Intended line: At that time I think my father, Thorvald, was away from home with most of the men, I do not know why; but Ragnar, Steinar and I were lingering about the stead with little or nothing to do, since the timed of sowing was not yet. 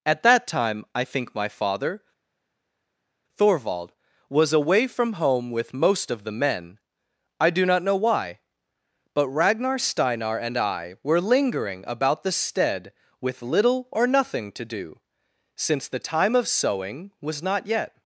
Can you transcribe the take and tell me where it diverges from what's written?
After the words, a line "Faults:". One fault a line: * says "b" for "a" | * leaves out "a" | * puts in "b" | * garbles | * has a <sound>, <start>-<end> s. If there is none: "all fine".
At that time I think my father, Thorvald, was away from home with most of the men, I do not know why; but Ragnar, Steinar and I were lingering about the stead with little or nothing to do, since the time of sowing was not yet.
Faults:
* says "time" for "timed"